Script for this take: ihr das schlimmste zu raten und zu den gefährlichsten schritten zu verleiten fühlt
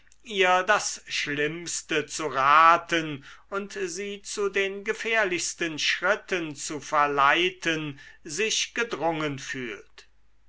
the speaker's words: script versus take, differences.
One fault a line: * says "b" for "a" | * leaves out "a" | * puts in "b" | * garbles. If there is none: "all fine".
* puts in "sie"
* puts in "sich gedrungen"